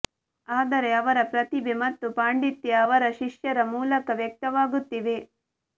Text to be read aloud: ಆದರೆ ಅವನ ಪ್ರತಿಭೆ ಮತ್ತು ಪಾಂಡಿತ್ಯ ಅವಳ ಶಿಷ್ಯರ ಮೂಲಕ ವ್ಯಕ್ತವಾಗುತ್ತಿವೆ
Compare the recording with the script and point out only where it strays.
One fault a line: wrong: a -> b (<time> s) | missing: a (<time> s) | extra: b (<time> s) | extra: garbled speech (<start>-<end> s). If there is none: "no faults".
wrong: ಅವನ -> ಅವರ (0.9 s)
wrong: ಅವಳ -> ಅವರ (2.8 s)